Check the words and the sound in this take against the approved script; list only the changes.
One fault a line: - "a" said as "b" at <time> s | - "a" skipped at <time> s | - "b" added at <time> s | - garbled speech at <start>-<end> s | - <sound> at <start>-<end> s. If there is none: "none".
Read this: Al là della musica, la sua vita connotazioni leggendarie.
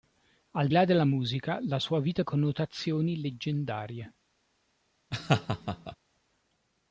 - laugh at 5.1-6.0 s